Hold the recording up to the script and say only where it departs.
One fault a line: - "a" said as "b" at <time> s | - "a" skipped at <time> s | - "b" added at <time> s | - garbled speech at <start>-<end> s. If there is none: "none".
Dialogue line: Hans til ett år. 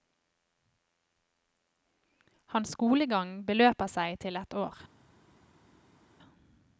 - "skolegang beløper seg" added at 2.8 s